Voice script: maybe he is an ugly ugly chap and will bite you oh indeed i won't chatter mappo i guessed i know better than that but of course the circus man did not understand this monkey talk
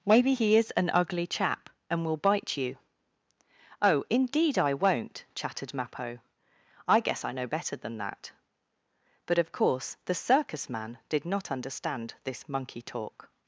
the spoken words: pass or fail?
fail